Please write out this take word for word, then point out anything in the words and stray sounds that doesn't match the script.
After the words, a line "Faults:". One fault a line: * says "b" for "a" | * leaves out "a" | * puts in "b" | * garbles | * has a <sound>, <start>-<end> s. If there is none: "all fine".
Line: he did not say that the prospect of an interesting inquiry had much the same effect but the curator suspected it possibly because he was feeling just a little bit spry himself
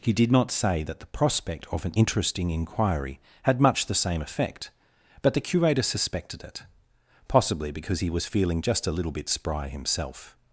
he did not say that the prospect of an interesting inquiry had much the same effect but the curator suspected it possibly because he was feeling just a little bit spry himself
Faults:
all fine